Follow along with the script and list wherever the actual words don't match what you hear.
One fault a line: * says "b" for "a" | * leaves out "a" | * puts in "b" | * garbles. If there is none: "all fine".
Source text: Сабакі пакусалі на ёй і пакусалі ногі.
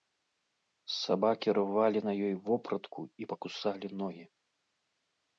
* says "рвалі" for "пакусалі"
* puts in "вопратку"